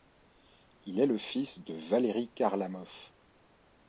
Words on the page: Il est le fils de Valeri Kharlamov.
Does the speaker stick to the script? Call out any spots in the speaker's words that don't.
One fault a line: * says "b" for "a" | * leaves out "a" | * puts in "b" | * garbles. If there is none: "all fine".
all fine